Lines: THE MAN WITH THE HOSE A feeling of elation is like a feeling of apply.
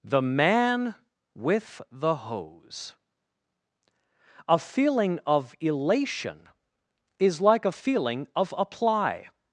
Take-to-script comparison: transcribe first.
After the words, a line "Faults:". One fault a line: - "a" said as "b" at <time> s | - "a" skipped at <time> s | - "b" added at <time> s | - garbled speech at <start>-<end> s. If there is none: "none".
THE MAN WITH THE HOSE A feeling of elation is like a feeling of apply.
Faults:
none